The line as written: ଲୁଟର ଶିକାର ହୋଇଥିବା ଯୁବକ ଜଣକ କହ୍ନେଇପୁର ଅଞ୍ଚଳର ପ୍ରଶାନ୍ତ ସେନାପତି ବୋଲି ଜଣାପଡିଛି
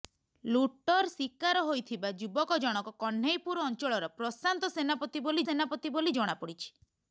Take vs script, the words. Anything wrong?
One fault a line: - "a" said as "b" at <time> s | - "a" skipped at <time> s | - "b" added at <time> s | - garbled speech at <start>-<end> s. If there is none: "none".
- "ସେନାପତି ବୋଲି" added at 5.4 s